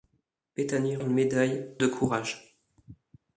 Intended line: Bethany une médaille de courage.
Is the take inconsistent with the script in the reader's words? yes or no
no